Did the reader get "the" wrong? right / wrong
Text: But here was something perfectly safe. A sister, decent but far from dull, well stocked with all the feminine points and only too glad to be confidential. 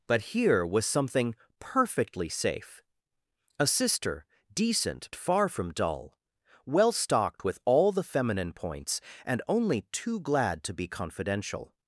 right